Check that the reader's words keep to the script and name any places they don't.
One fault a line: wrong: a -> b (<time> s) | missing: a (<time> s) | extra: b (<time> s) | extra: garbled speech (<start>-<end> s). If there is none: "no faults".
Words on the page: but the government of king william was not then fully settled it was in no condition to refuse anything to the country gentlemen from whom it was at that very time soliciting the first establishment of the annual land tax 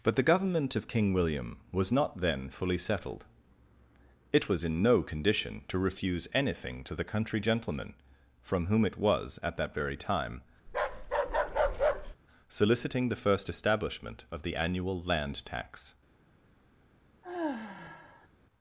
no faults